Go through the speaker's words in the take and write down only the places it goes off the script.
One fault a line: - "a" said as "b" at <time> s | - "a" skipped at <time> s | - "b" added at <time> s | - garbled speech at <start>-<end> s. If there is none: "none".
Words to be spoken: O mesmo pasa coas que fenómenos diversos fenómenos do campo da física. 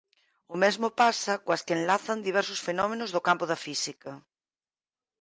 - "fenómenos" said as "enlazan" at 1.8 s